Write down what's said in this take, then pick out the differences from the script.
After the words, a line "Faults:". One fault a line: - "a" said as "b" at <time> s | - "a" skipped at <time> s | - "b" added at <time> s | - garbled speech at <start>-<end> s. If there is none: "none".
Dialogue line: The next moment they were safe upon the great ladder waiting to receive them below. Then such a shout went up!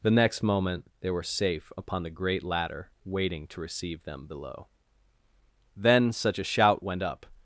The next moment they were safe upon the great ladder waiting to receive them below. Then such a shout went up!
Faults:
none